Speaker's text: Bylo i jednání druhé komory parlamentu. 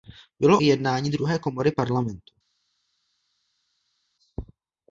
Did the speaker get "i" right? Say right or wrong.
right